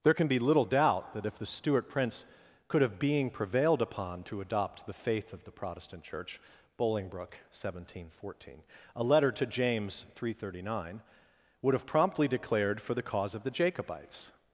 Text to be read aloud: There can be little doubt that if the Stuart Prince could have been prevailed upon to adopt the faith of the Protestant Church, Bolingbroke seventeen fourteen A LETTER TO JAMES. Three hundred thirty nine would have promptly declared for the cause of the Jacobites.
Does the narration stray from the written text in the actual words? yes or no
yes